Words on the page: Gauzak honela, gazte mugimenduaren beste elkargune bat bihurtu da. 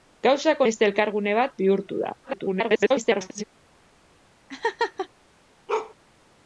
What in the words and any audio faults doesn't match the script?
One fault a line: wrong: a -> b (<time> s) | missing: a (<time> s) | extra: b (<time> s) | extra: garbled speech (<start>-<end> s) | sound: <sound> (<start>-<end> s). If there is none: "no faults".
missing: honela gazte mugimenduaren (0.6 s)
extra: garbled speech (2.2-3.4 s)
sound: laugh (4.5-5.1 s)
sound: bark (5.7-5.9 s)